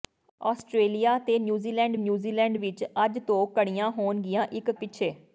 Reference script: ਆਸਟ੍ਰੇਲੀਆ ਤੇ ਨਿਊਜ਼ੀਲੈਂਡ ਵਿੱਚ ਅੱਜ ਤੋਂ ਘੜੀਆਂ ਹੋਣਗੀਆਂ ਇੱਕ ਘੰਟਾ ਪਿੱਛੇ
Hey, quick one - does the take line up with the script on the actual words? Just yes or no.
no